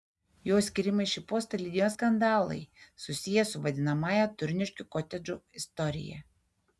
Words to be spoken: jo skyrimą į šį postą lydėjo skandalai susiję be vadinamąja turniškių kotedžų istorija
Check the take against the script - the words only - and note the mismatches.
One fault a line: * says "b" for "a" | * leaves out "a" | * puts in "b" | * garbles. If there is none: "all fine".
* says "su" for "be"